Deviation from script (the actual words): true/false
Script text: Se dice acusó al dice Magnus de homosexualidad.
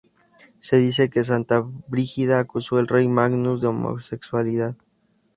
true